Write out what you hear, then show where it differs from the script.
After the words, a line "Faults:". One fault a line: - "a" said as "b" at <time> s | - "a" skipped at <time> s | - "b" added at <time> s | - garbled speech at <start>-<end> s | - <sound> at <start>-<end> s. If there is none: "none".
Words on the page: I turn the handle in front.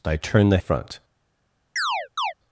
I turn the front.
Faults:
- "handle in" skipped at 0.6 s
- chirp at 1.8-2.3 s